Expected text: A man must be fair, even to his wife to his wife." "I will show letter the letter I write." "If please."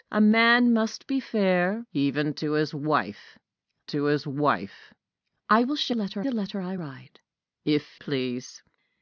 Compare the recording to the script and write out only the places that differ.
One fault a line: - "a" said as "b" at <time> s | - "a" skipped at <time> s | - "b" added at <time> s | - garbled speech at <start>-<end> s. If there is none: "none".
none